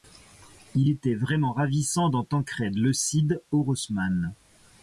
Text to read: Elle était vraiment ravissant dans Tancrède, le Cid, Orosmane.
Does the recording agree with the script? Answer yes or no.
no